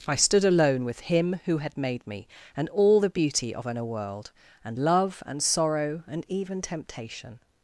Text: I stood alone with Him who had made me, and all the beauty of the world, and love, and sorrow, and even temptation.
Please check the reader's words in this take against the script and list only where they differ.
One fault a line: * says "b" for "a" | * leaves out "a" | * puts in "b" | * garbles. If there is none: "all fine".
* says "an" for "the"